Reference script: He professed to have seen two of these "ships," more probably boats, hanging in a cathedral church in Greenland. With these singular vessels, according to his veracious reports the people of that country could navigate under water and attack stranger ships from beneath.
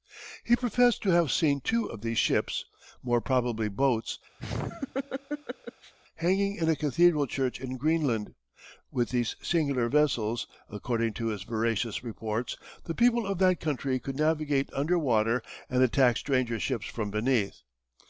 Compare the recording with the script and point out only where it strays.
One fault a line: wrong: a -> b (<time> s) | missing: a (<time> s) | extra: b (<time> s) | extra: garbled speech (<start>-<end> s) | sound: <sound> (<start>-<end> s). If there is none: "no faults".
sound: laugh (4.4-5.9 s)